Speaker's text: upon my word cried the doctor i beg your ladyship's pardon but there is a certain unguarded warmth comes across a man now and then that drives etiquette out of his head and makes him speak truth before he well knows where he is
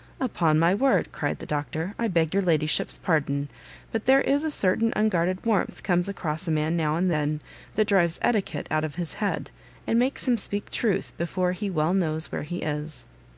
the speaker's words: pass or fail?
pass